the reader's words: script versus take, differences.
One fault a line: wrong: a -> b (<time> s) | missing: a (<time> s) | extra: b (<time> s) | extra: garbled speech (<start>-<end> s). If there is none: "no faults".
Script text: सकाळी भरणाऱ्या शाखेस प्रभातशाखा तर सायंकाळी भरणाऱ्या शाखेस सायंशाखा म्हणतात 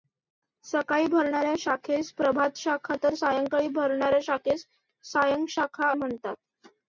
no faults